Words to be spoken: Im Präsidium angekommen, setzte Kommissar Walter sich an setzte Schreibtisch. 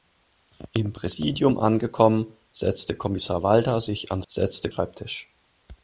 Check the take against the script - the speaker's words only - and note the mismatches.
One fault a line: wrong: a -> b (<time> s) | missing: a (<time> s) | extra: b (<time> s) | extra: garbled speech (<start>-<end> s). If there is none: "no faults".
no faults